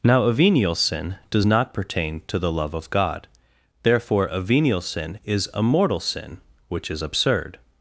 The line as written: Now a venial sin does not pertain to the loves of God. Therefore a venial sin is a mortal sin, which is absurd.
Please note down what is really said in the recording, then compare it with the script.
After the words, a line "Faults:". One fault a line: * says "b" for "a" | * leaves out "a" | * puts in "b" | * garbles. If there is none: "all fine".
Now a venial sin does not pertain to the love of God. Therefore a venial sin is a mortal sin, which is absurd.
Faults:
* says "love" for "loves"